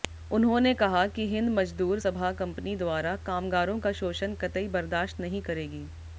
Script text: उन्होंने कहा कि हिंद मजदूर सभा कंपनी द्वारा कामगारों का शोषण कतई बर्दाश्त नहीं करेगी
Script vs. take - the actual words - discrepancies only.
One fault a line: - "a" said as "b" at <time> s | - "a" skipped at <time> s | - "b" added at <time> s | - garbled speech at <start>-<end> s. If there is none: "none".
none